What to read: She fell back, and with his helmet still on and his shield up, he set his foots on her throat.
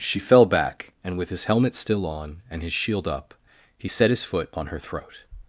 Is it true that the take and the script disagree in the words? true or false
true